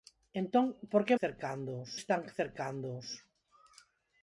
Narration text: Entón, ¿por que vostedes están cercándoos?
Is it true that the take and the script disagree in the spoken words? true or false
true